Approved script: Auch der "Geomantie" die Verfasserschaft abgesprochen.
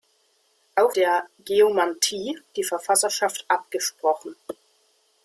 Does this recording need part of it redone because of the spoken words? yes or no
no